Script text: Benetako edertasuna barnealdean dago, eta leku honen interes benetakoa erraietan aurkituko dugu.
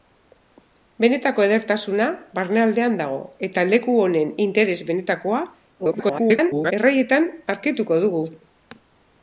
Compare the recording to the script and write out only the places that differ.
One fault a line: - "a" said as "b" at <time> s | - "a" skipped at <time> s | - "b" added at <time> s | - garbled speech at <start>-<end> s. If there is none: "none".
- garbled speech at 5.8-6.7 s